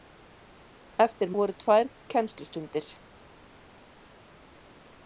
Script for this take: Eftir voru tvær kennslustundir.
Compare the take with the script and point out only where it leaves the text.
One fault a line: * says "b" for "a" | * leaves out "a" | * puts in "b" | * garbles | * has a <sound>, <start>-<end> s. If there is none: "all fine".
all fine